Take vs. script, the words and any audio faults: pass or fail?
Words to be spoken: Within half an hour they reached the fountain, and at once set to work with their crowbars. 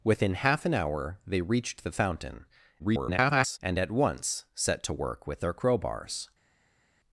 fail